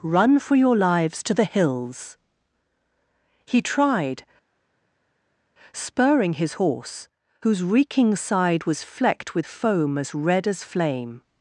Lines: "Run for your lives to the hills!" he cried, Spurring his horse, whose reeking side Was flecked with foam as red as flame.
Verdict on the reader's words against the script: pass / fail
fail